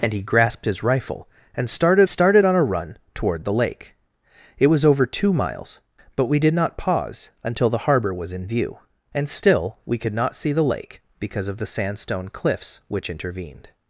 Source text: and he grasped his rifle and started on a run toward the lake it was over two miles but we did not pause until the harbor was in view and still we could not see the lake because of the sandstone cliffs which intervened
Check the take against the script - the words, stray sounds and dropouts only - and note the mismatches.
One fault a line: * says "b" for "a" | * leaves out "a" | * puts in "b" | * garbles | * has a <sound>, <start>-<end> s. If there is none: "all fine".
* puts in "started"